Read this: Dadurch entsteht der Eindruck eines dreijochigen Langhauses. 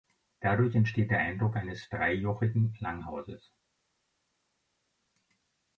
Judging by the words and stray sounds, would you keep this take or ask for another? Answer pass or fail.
pass